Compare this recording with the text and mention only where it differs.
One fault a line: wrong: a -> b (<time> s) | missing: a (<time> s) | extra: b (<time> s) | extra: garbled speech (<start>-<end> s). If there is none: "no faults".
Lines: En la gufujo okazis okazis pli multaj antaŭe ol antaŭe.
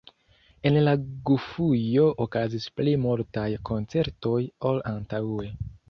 missing: okazis (2.7 s)
wrong: antaŭe -> koncertoj (3.7 s)